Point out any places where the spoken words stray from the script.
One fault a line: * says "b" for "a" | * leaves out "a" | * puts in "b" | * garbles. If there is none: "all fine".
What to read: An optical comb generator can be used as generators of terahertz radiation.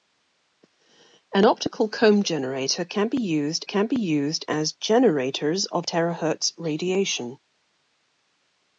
* puts in "can be used"